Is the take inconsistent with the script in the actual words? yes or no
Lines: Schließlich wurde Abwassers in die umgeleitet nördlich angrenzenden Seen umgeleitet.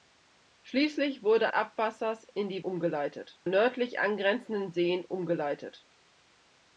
no